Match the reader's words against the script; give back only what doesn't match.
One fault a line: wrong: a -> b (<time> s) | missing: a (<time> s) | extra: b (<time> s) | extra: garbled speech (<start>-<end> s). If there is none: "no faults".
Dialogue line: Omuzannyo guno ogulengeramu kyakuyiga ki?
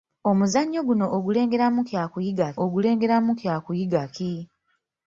extra: ogulengeramu kyakuyiga (2.6 s)